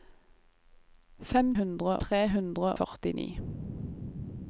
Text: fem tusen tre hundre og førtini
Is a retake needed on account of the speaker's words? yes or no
yes